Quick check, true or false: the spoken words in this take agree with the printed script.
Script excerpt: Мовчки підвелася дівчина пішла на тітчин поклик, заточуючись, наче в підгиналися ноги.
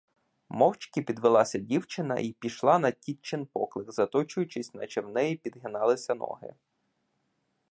false